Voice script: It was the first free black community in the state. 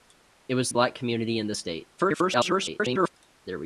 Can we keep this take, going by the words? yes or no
no